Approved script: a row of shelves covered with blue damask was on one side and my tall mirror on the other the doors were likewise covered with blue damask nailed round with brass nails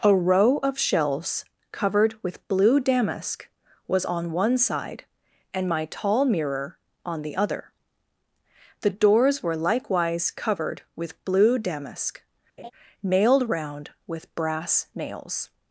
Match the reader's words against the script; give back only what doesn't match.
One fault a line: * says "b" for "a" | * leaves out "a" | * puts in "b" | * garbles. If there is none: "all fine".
all fine